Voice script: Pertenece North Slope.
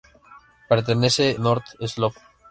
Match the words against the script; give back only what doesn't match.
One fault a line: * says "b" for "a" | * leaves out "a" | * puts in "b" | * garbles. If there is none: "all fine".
all fine